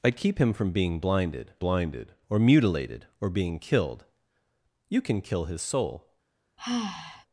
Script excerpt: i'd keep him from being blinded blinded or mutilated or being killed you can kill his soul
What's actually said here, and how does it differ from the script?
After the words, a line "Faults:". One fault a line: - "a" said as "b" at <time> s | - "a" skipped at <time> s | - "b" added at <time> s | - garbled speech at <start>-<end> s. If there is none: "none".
i'd keep him from being blinded blinded or mutilated or being killed you can kill his soul
Faults:
none